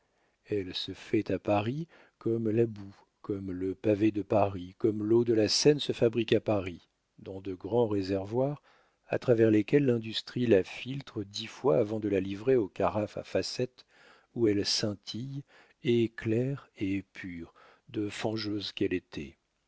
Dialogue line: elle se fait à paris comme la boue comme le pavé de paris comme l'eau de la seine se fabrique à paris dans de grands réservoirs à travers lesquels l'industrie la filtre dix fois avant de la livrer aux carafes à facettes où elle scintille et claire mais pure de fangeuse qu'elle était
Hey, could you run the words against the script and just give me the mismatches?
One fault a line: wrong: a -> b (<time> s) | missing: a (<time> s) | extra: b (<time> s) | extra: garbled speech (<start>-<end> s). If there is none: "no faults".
wrong: mais -> et (16.8 s)